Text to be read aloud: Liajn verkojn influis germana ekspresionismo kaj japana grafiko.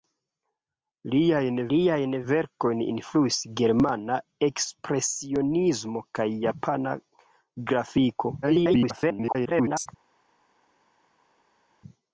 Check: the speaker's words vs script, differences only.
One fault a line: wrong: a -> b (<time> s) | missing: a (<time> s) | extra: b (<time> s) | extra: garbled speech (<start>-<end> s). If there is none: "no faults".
extra: liajn (1.7 s)
extra: garbled speech (8.4-9.9 s)